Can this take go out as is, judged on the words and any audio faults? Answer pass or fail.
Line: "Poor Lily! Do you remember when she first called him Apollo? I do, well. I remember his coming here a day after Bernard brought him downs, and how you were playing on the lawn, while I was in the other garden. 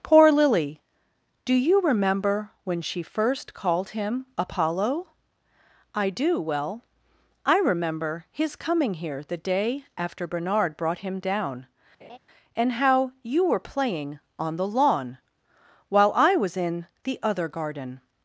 fail